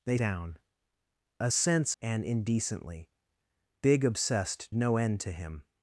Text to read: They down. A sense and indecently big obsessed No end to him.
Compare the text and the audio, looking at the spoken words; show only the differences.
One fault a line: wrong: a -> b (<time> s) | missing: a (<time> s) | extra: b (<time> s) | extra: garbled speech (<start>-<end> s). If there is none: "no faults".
no faults